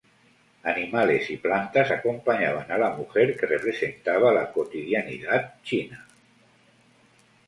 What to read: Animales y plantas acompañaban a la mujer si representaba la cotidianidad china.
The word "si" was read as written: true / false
false